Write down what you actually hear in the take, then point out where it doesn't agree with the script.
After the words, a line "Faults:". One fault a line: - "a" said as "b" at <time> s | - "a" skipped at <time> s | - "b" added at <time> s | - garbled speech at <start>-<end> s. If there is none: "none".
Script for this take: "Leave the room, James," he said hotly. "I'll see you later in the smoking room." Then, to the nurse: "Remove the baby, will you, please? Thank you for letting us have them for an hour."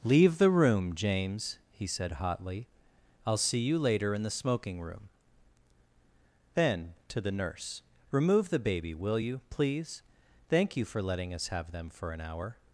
"Leave the room, James," he said hotly. "I'll see you later in the smoking room." Then, to the nurse: "Remove the baby, will you, please? Thank you for letting us have them for an hour."
Faults:
none